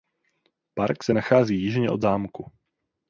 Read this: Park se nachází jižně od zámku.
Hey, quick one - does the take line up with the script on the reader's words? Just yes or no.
yes